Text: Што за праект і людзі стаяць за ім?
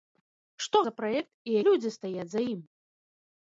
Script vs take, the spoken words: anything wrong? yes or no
no